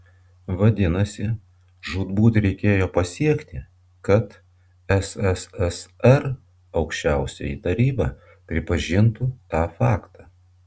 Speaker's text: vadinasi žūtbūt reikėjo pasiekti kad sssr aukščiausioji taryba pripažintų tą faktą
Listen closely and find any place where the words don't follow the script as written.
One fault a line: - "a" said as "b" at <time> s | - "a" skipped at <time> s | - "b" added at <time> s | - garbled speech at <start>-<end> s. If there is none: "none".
none